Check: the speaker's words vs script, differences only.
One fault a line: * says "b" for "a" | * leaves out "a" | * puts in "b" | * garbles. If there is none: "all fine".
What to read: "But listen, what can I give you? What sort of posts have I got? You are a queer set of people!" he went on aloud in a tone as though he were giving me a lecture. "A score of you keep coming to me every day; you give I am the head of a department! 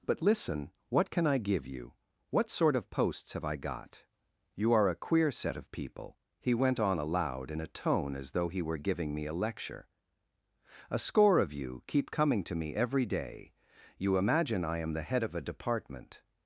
* says "imagine" for "give"